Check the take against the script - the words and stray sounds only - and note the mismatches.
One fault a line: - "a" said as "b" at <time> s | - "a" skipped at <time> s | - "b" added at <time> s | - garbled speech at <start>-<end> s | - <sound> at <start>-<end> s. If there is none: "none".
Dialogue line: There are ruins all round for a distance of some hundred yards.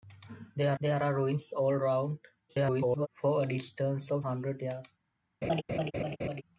- "there" added at 0.8 s
- garbled speech at 2.5-3.1 s
- "some" skipped at 4.3 s
- laugh at 5.4-6.4 s